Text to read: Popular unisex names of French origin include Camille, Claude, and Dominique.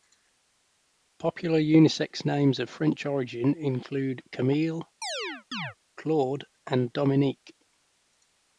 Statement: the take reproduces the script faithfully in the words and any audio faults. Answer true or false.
false